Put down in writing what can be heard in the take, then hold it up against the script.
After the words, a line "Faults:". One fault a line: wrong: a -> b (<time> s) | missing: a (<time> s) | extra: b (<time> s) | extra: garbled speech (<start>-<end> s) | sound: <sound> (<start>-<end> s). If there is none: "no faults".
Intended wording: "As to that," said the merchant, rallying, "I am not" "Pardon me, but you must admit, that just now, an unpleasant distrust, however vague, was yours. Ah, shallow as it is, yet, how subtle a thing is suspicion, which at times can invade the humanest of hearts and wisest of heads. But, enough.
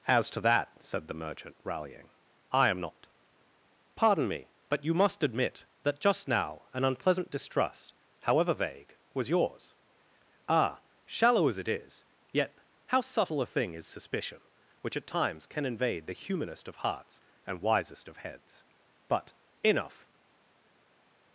"As to that," said the merchant, rallying, "I am not" "Pardon me, but you must admit, that just now, an unpleasant distrust, however vague, was yours. Ah, shallow as it is, yet, how subtle a thing is suspicion, which at times can invade the humanest of hearts and wisest of heads. But, enough.
Faults:
no faults